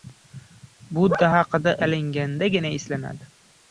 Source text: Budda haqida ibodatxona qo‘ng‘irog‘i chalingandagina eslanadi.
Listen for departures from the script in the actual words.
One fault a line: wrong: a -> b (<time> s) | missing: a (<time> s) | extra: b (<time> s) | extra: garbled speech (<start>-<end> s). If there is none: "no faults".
missing: ibodatxona qo‘ng‘irog‘i (1.7 s)